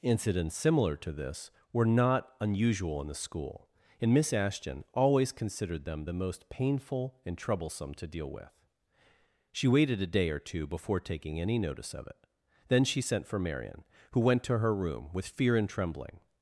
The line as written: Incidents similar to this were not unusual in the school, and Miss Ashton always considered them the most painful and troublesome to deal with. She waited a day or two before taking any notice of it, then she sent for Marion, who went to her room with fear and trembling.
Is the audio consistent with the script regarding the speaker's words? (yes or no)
yes